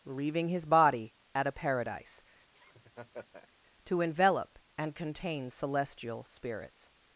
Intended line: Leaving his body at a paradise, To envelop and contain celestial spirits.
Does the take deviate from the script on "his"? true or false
false